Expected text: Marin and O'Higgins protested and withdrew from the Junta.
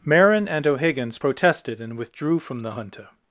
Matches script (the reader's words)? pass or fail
pass